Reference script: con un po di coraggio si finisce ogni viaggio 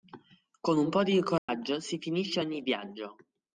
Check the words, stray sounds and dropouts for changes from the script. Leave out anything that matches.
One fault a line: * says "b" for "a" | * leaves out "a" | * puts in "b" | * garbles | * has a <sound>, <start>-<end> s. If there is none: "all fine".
* has a dropout, 1.4-1.5 s